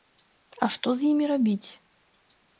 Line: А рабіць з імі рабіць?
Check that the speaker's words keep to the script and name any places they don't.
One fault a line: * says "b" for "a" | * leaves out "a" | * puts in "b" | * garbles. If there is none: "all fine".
* says "што" for "рабіць"